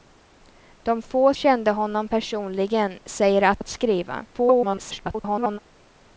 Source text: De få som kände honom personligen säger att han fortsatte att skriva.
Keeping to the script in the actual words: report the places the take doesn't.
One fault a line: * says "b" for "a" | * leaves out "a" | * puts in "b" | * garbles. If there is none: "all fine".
* leaves out "som"
* leaves out "han fortsatte"
* garbles